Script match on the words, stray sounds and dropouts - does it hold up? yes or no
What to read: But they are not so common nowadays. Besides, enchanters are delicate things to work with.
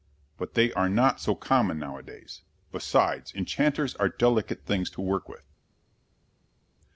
yes